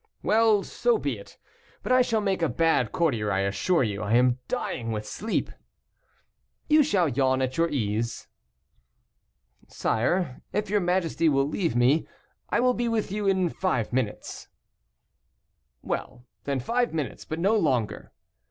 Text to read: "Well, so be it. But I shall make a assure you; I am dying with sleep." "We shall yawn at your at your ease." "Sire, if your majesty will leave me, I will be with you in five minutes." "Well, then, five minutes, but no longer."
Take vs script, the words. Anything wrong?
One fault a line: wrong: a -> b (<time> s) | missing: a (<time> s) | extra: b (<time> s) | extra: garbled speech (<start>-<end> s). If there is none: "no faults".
extra: bad courtier I (2.5 s)
wrong: We -> You (6.7 s)
missing: at your (7.7 s)